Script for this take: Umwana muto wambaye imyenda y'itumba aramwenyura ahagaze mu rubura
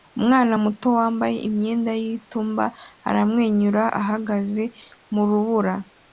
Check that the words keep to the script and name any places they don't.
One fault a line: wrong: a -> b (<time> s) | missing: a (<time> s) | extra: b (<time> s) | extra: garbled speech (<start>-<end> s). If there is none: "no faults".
no faults